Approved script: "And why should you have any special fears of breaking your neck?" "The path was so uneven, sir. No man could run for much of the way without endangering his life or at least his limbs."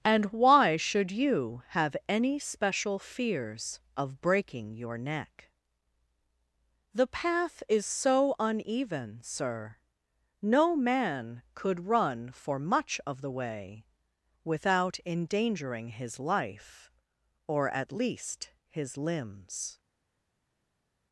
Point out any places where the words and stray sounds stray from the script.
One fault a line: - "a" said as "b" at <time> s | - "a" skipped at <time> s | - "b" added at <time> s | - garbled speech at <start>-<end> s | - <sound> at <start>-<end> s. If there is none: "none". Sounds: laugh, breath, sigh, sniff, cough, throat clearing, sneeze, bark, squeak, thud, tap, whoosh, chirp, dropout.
- "was" said as "is" at 7.7 s